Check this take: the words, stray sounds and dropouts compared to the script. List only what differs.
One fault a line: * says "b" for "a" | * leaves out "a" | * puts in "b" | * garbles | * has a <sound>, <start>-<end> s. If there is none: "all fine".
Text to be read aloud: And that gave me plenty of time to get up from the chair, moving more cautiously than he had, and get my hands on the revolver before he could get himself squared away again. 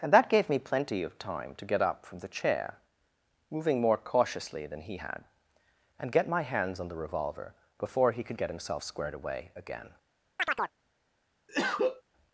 * has a chirp, 10.4-10.7 s
* has a cough, 11.5-12.0 s